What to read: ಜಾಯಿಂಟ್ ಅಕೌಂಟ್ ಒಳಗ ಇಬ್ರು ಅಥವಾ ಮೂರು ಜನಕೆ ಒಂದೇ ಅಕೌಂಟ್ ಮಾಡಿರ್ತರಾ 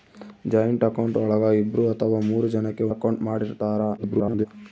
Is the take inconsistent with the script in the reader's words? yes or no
yes